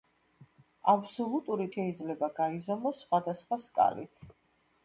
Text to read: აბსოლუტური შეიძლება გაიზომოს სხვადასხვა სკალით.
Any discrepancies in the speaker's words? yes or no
no